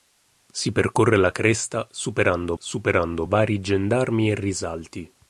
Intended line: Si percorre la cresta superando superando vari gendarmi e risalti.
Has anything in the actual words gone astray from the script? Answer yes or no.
no